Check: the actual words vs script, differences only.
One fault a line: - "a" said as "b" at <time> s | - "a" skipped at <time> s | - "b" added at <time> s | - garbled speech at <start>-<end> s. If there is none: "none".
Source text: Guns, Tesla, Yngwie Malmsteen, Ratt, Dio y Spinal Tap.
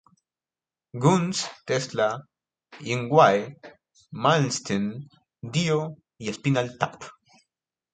- "Ratt" skipped at 5.1 s